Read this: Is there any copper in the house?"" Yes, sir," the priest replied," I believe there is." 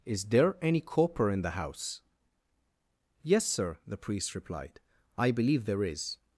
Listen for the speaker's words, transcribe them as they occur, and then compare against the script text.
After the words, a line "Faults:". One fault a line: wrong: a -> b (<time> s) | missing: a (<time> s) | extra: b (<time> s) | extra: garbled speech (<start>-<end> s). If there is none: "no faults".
Is there any copper in the house?"" Yes, sir," the priest replied," I believe there is."
Faults:
no faults